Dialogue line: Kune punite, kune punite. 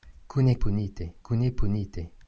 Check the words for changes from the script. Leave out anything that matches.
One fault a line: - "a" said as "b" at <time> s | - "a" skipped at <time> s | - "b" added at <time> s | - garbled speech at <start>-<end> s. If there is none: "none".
none